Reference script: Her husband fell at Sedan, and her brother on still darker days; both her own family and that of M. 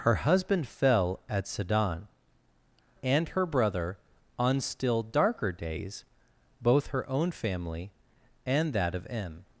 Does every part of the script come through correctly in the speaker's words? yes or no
yes